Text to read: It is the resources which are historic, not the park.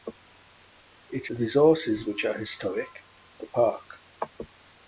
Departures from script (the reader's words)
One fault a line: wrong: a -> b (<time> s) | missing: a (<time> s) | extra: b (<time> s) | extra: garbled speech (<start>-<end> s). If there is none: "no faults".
missing: is (1.3 s)
missing: not (2.9 s)